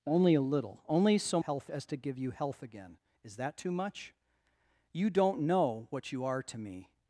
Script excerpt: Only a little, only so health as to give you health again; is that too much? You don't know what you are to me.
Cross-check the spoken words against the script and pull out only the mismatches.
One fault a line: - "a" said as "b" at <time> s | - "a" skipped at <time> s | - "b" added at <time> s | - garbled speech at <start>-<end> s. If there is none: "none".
none